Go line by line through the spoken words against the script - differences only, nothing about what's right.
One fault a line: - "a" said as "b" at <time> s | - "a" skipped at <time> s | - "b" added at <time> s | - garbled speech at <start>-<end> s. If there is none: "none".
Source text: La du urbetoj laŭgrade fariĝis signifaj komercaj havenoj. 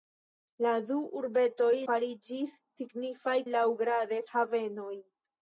- "laŭgrade" skipped at 1.7 s
- "komercaj" said as "laŭgrade" at 3.5 s